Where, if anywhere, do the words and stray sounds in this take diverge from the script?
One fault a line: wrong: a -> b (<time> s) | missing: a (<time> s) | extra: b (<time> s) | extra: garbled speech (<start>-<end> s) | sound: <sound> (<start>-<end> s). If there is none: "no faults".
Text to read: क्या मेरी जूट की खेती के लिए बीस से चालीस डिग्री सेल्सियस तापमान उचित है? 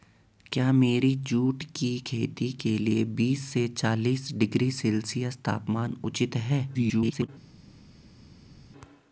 extra: garbled speech (6.7-7.3 s)